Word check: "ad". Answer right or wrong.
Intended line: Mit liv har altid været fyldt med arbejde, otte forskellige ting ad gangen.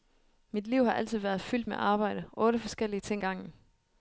wrong